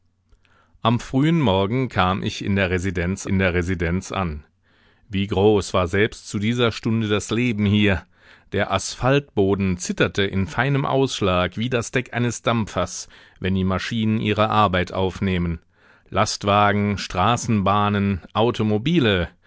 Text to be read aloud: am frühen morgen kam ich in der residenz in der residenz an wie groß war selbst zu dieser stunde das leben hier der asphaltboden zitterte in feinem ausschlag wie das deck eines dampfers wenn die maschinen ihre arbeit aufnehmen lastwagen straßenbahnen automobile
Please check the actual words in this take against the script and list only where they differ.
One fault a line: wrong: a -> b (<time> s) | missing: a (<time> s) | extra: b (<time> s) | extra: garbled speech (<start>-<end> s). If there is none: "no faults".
no faults